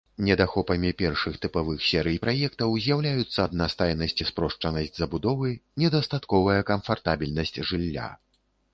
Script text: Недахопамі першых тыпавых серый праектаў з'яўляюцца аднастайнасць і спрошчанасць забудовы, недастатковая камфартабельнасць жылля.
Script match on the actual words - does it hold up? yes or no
yes